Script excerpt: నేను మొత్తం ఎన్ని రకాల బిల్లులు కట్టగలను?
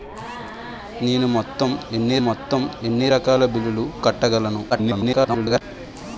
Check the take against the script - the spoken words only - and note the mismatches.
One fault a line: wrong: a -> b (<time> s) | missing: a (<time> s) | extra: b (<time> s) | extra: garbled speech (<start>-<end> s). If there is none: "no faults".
extra: మొత్తం ఎన్ని (2.2 s)
extra: garbled speech (4.7-5.6 s)